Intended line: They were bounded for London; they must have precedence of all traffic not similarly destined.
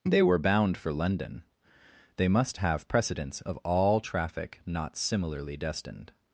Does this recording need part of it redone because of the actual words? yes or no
yes